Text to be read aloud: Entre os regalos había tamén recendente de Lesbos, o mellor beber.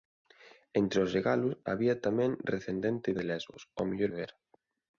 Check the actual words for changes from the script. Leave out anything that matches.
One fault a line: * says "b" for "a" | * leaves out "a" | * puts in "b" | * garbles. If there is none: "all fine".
all fine